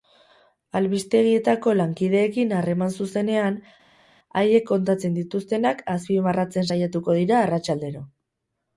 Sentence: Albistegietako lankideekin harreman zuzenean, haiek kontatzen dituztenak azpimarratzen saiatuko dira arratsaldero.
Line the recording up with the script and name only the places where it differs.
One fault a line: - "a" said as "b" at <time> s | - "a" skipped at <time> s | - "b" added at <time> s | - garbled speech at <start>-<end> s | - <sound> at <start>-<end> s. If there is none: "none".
none